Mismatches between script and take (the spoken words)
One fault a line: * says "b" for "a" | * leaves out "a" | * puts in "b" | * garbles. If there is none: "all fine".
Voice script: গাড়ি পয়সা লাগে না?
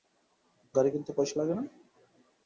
* puts in "কিনতে"